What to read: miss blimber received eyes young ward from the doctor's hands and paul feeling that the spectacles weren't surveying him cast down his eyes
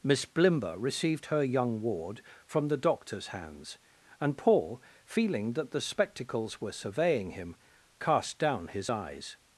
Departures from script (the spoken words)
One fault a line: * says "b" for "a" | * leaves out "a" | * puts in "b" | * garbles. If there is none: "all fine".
* says "her" for "eyes"
* says "were" for "weren't"